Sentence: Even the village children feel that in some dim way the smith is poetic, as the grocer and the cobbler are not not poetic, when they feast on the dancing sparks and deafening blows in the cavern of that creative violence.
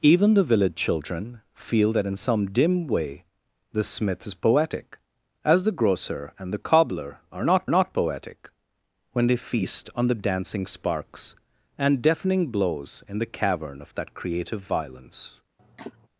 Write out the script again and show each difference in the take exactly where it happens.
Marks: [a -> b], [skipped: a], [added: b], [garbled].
Even the village children feel that in some dim way the smith is poetic, as the grocer and the cobbler are not not poetic, when they feast on the dancing sparks and deafening blows in the cavern of that creative violence.